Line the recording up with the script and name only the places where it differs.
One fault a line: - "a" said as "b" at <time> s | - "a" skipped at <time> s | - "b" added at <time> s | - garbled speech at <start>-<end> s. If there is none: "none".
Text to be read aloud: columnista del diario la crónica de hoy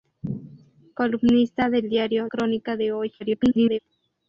- "la" skipped at 2.3 s
- garbled speech at 3.2-3.8 s